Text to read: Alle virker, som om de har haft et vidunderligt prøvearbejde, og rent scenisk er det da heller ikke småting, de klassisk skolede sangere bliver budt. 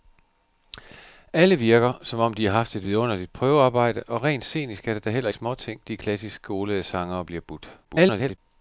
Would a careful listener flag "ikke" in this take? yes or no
yes